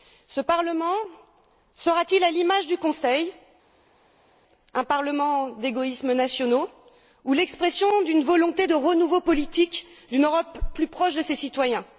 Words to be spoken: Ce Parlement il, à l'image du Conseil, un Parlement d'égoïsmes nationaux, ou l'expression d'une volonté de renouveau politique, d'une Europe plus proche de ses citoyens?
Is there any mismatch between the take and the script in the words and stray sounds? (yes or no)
yes